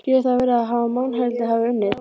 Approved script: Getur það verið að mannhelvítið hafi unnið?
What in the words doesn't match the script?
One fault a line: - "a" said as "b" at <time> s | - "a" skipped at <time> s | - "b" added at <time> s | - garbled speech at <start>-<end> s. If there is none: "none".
none